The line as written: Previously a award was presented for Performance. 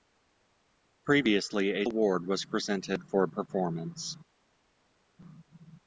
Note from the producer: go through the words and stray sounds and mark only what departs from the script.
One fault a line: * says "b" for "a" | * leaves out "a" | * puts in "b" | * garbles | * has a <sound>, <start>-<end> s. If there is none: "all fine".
all fine